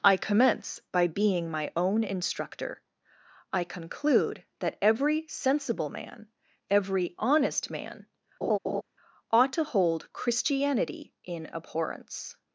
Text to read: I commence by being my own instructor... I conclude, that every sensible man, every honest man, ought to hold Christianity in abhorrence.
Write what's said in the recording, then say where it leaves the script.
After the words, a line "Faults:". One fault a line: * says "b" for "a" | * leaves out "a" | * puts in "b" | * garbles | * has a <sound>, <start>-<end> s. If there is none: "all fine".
I commence by being my own instructor... I conclude, that every sensible man, every honest man, ought to hold Christianity in abhorrence.
Faults:
* has a laugh, 8.4-8.8 s